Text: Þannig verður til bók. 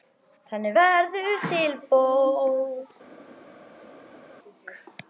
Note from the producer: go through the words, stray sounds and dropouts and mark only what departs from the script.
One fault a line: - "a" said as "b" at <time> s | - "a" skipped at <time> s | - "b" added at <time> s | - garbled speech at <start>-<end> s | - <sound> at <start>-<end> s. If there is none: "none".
none